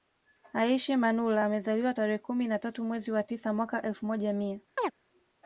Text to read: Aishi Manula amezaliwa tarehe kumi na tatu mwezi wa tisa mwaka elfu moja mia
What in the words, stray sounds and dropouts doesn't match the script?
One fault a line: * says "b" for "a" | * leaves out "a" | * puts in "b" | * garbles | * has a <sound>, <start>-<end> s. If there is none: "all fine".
* has a chirp, 4.8-4.9 s